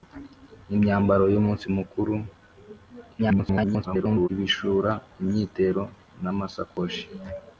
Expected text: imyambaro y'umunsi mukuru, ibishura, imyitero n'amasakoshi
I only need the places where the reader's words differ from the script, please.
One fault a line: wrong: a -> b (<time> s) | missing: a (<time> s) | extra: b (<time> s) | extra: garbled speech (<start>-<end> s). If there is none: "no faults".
extra: garbled speech (3.2-4.3 s)